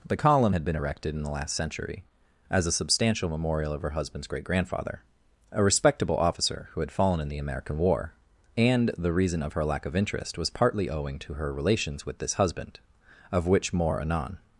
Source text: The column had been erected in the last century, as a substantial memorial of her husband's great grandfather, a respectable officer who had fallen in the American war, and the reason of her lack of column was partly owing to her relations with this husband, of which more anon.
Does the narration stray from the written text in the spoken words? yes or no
yes